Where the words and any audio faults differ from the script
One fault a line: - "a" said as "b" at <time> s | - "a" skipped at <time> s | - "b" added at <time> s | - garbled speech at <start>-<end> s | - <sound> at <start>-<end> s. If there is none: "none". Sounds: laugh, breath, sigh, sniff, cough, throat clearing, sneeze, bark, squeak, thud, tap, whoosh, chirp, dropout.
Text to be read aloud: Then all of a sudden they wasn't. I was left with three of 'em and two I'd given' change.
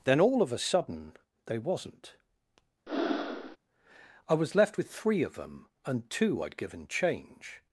- breath at 2.9-3.6 s
- "em" said as "them" at 5.4 s